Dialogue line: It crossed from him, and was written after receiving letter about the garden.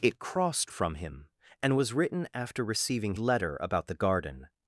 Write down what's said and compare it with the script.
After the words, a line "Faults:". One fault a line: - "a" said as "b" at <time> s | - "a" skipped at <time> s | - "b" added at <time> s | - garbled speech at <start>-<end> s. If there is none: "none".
It crossed from him, and was written after receiving letter about the garden.
Faults:
none